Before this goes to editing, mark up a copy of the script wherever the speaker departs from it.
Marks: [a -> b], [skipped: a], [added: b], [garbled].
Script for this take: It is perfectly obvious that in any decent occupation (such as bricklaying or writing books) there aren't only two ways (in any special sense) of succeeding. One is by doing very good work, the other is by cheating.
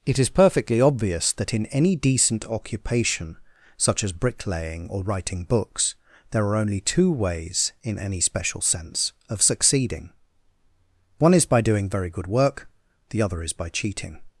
It is perfectly obvious that in any decent occupation (such as bricklaying or writing books) there [aren't -> are] only two ways (in any special sense) of succeeding. One is by doing very good work, the other is by cheating.